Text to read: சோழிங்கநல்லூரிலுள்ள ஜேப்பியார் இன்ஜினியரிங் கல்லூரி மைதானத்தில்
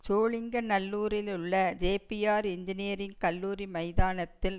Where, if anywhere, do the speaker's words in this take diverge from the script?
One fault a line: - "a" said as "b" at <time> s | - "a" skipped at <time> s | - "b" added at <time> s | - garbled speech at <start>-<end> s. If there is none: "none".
none